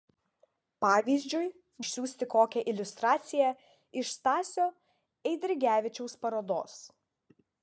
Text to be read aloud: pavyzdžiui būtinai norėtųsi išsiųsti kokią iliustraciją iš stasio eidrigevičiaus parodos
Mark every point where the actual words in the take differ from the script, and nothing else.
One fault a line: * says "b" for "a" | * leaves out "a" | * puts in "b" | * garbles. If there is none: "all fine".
* leaves out "būtinai norėtųsi"